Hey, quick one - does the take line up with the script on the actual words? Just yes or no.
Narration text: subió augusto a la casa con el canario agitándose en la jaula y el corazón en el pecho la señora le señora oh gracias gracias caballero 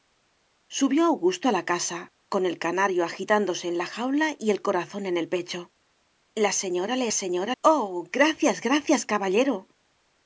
yes